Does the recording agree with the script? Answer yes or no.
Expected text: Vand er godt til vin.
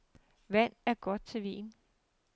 yes